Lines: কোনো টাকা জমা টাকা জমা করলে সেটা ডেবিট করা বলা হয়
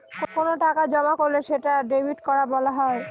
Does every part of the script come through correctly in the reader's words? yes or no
no